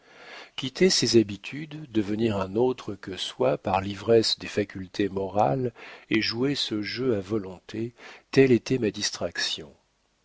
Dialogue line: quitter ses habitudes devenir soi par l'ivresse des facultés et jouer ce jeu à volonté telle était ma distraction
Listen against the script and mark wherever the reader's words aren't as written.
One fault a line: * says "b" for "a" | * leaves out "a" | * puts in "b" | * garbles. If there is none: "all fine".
* puts in "un autre que"
* puts in "morales"